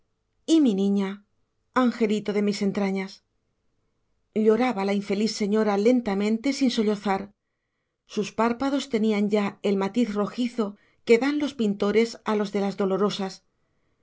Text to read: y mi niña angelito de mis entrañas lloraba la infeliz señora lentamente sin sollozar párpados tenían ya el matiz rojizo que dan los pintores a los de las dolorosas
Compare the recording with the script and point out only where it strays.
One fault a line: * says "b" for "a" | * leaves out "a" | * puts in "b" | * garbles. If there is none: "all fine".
* puts in "sus"